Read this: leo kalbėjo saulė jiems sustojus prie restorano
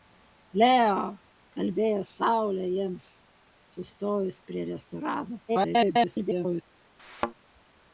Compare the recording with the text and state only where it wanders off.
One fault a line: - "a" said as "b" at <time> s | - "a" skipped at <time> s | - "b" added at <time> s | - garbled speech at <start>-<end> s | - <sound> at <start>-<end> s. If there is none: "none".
- garbled speech at 5.5-6.6 s
- thud at 7.0-7.3 s